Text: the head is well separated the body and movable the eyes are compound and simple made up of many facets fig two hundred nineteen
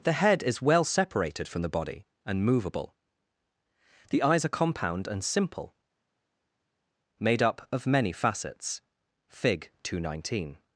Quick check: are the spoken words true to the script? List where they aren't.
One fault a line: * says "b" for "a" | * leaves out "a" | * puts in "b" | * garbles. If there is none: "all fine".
* puts in "from"